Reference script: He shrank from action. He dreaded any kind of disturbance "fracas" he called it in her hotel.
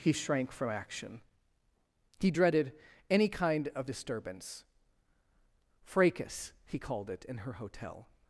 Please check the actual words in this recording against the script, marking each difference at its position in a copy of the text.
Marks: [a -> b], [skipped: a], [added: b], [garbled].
He shrank from action. He dreaded any kind of disturbance "fracas" he called it in her hotel.